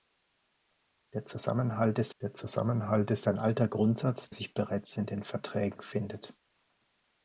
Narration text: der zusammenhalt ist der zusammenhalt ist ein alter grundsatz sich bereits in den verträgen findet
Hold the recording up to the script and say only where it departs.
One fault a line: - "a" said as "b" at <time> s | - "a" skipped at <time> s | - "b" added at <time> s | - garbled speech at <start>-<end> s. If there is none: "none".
none